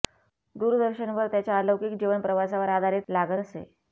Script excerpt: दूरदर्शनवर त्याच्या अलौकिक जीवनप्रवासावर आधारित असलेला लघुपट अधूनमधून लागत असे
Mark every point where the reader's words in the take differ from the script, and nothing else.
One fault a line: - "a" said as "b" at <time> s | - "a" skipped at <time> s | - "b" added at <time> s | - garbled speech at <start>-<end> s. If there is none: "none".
- "असलेला लघुपट अधूनमधून" skipped at 3.1 s